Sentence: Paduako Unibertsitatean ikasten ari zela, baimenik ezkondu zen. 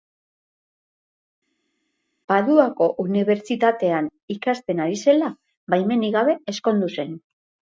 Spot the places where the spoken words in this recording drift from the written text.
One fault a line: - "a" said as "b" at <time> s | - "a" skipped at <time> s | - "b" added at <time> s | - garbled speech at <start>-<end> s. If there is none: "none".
- "gabe" added at 6.2 s